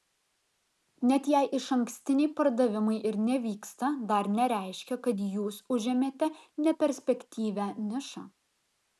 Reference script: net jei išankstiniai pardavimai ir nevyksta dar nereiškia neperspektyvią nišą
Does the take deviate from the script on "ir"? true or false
false